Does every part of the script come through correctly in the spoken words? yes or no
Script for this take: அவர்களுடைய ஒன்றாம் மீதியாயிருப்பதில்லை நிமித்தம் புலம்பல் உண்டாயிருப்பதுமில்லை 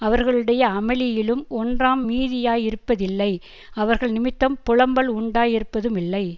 no